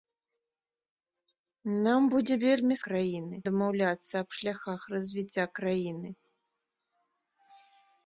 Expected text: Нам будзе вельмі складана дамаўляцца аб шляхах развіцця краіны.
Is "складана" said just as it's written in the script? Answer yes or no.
no